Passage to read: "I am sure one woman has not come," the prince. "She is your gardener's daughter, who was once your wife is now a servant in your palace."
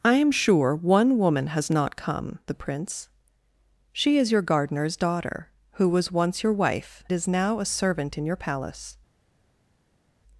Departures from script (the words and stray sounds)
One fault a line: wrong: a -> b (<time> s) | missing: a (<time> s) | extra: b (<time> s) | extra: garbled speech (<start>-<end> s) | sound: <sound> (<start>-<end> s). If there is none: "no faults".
no faults